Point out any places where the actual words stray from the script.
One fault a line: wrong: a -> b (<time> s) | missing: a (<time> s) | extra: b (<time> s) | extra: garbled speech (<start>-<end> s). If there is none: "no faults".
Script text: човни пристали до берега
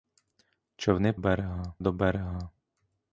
wrong: пристали -> берега (1.2 s)